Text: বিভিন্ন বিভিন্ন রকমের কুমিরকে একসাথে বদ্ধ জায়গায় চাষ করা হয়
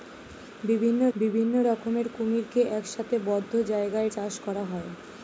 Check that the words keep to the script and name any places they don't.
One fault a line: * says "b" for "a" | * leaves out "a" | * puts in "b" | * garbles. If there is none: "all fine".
all fine